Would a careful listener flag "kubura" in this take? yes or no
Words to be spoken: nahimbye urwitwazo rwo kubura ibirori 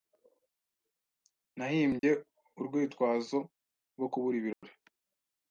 no